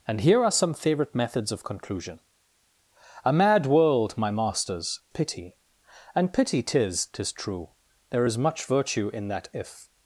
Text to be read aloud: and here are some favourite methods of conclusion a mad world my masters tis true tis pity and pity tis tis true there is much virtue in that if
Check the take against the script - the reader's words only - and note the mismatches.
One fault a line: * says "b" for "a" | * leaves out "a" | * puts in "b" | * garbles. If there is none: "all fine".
* leaves out "tis true tis"